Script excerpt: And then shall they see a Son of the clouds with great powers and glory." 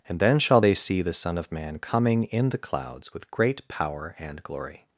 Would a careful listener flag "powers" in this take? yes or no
yes